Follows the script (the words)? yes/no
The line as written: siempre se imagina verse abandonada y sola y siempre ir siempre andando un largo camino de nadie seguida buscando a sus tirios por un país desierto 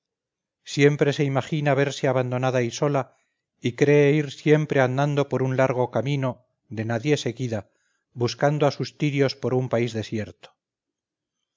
no